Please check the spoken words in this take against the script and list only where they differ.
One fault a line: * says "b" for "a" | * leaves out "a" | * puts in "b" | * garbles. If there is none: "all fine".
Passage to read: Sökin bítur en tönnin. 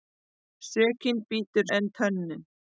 all fine